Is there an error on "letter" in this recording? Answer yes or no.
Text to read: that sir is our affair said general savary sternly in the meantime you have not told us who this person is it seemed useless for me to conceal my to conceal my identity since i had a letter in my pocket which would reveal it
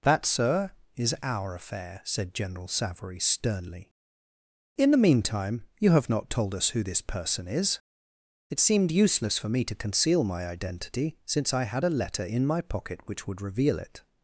no